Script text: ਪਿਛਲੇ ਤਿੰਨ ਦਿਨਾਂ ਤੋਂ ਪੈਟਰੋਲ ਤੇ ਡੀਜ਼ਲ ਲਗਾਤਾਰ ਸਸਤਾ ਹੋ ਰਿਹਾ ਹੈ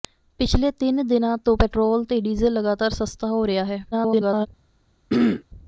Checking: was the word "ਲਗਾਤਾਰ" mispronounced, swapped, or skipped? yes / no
no